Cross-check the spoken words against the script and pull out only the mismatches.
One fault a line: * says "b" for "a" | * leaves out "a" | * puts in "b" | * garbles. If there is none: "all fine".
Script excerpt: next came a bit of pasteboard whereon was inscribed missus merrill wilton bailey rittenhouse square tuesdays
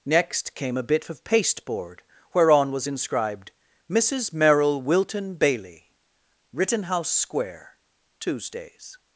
all fine